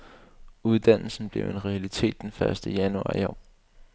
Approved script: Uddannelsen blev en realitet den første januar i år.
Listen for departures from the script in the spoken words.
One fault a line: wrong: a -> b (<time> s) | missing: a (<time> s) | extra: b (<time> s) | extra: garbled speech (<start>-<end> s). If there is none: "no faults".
no faults